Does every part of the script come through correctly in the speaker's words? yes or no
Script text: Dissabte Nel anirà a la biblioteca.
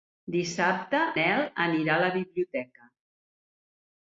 yes